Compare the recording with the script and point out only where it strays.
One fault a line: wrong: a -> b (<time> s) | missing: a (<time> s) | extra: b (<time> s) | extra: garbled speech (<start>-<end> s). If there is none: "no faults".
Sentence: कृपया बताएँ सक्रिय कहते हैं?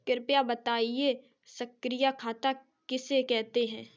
extra: खाता किसे (2.2 s)